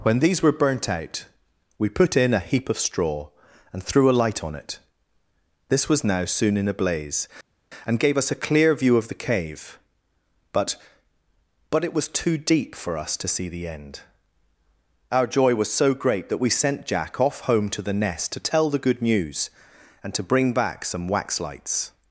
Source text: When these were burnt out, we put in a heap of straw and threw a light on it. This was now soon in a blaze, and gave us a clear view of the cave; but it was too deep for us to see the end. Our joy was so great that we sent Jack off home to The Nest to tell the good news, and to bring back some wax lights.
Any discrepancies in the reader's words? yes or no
yes